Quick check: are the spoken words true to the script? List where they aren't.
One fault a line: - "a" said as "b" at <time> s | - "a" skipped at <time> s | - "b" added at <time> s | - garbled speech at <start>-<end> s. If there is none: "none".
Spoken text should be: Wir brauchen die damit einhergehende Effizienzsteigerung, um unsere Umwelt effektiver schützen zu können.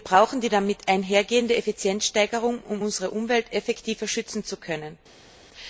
none